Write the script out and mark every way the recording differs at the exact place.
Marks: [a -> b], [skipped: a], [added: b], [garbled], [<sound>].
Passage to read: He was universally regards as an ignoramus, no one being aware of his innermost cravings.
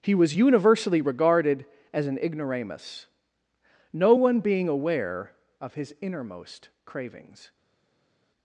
He was universally [regards -> regarded] as an ignoramus, no one being aware of his innermost cravings.